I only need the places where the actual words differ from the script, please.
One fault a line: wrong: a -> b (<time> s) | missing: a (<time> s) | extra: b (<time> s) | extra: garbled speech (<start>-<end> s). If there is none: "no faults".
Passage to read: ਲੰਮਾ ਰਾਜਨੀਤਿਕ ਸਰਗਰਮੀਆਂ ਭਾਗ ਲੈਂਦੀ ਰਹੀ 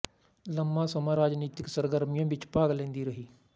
extra: ਸਮਾਂ (0.8 s)
extra: ਵਿੱਚ (2.3 s)